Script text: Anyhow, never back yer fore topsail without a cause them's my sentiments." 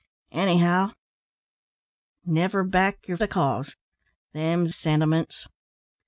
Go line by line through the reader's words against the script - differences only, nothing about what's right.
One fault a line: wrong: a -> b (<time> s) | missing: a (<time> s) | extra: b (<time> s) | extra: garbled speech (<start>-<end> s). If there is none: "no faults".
missing: fore topsail without (3.2 s)
missing: my (4.7 s)